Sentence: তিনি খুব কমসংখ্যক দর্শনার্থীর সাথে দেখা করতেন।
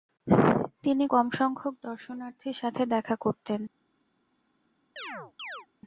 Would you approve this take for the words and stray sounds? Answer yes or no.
no